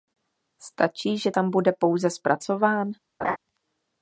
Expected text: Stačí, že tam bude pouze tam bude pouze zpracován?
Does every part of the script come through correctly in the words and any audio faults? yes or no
no